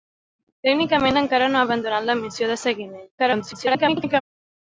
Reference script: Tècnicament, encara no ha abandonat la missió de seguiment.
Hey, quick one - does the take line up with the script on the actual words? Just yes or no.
no